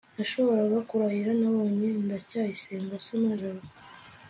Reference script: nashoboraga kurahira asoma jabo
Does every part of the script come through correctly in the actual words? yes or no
no